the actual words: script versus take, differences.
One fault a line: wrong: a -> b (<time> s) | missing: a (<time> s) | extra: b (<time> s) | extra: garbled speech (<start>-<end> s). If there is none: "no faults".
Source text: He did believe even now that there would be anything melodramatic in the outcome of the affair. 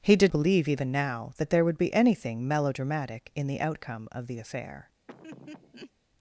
no faults